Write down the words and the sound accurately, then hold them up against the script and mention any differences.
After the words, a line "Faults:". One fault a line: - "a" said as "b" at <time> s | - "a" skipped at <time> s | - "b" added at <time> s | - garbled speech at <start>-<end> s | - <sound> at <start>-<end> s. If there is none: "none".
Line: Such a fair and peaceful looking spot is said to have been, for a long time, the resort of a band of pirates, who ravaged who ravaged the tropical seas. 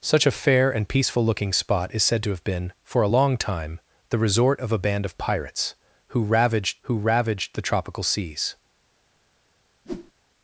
Such a fair and peaceful looking spot is said to have been, for a long time, the resort of a band of pirates, who ravaged who ravaged the tropical seas.
Faults:
- whoosh at 9.8-10.1 s